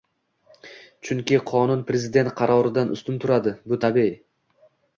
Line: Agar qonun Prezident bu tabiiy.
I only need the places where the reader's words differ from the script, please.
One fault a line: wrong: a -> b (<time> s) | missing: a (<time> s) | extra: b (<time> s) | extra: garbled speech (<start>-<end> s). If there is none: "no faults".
wrong: Agar -> Chunki (1.1 s)
extra: qaroridan ustun turadi (2.4 s)